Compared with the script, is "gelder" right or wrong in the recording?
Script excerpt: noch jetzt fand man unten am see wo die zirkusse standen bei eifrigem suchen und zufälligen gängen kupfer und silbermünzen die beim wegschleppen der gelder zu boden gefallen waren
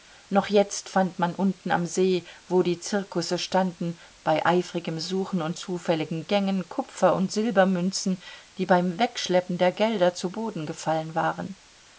right